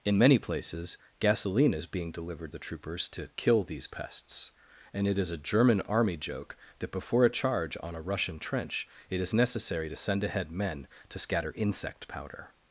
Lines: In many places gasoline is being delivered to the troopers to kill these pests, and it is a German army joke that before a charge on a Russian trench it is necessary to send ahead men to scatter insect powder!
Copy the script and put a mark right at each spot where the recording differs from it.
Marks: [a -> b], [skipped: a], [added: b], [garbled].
In many places gasoline is being delivered [skipped: to] the troopers to kill these pests, and it is a German army joke that before a charge on a Russian trench it is necessary to send ahead men to scatter insect powder!